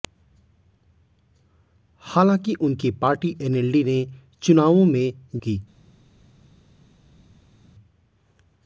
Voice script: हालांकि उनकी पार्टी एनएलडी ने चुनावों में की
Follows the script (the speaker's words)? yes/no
yes